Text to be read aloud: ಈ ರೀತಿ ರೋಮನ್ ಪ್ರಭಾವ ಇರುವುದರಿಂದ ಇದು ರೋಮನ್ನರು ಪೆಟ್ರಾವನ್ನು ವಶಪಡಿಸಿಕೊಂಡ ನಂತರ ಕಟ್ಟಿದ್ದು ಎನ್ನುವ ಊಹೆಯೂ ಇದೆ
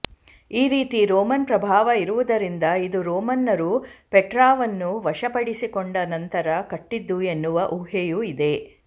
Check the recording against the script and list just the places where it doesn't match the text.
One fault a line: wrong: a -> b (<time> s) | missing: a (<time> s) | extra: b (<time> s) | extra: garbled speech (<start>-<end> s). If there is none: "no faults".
no faults